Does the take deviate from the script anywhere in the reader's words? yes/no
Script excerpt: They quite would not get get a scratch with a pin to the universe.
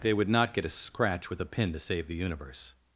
yes